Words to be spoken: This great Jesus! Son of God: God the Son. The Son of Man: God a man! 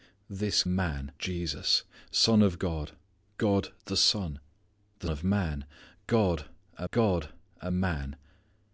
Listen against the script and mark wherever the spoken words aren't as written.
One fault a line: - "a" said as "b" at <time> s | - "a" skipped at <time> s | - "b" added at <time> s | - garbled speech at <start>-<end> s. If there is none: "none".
- "great" said as "man" at 0.7 s
- "Son" skipped at 5.1 s
- "God a" added at 6.9 s